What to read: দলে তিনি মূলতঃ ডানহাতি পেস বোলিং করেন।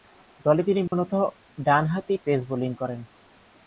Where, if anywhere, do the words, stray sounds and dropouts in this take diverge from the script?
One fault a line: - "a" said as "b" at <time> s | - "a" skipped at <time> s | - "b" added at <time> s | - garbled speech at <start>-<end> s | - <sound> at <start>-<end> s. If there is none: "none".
- dropout at 0.9-0.9 s